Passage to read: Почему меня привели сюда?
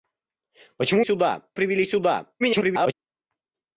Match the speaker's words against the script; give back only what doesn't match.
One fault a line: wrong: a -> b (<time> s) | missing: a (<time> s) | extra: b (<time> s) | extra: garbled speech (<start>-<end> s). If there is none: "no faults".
wrong: меня -> сюда (1.0 s)
extra: garbled speech (2.4-2.9 s)